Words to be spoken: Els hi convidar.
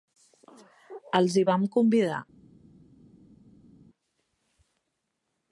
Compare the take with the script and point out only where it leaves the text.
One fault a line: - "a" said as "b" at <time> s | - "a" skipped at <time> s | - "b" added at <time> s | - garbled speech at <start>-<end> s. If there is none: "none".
- "vam" added at 1.5 s